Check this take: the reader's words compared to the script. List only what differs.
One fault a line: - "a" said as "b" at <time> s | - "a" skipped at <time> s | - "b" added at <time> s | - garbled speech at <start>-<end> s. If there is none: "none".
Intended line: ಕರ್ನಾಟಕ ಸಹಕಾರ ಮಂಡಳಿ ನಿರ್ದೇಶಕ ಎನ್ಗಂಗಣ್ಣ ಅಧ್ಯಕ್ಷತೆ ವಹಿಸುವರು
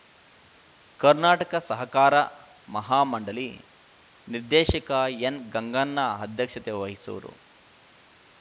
- "ಮಹಾ" added at 2.7 s